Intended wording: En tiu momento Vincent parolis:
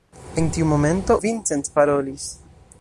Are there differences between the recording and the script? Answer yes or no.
no